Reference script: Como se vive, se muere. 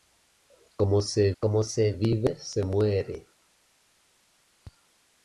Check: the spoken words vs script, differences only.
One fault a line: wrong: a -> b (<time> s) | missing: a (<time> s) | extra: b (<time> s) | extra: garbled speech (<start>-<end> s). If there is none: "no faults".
extra: como se (1.4 s)